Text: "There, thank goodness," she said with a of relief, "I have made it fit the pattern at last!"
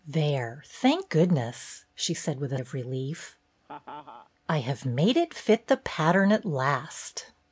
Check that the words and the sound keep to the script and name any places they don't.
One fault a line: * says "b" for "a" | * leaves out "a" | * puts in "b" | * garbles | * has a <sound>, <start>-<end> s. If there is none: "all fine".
* has a laugh, 3.6-4.3 s